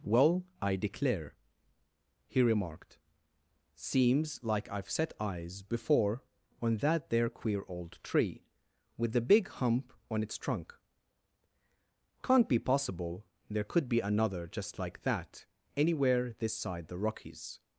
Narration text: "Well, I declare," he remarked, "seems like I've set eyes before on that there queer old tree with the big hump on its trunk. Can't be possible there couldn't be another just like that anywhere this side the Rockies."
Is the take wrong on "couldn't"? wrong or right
wrong